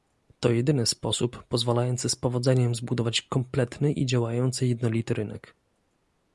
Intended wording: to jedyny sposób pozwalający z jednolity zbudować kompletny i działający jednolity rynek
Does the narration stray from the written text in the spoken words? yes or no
yes